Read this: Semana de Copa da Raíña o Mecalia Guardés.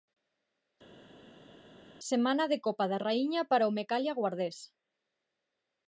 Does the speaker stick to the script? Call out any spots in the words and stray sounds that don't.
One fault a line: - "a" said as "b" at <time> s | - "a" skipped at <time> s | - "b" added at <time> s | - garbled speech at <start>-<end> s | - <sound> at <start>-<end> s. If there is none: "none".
- "para" added at 3.5 s